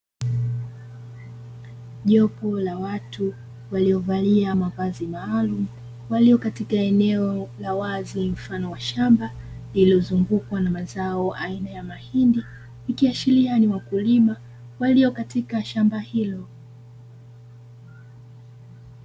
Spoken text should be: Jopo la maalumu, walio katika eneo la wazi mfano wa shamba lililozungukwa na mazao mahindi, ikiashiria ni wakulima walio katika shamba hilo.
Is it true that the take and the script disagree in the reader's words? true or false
true